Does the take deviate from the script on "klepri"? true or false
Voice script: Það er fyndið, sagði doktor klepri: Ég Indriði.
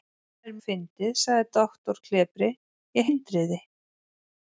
false